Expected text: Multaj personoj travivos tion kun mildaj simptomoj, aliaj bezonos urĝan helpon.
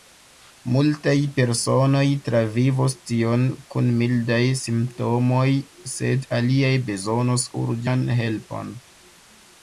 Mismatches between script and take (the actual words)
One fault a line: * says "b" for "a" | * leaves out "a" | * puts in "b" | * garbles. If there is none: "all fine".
* puts in "sed"